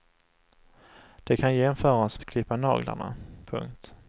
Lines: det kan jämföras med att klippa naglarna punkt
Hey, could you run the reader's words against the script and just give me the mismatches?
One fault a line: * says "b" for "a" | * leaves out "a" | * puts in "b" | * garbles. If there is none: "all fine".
* leaves out "med"